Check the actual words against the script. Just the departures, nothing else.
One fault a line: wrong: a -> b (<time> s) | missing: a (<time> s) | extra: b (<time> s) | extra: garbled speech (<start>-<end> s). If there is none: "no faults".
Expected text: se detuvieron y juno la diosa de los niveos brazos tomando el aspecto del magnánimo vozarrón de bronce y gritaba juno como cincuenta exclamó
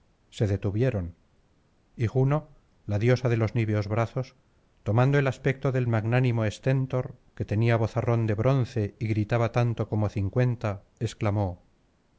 extra: esténtor que tenía (6.5 s)
wrong: juno -> tanto (9.5 s)